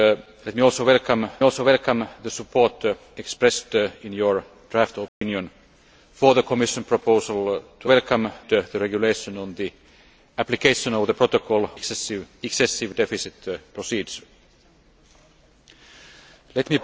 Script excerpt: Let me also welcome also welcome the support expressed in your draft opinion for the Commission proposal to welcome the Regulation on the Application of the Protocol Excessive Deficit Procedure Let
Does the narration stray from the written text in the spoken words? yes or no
no